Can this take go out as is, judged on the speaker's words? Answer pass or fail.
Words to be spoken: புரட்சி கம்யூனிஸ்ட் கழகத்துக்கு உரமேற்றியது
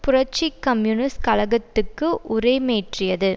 pass